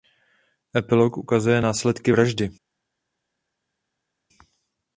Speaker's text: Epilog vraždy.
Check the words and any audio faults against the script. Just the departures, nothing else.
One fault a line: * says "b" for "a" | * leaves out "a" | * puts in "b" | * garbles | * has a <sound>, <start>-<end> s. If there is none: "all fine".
* puts in "ukazuje následky"